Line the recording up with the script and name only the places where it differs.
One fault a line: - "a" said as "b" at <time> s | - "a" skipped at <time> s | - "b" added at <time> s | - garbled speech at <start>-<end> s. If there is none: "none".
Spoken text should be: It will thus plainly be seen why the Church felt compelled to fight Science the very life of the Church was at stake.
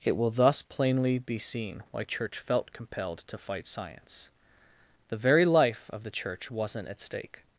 - "the" skipped at 2.0 s
- "was" said as "wasn't" at 6.5 s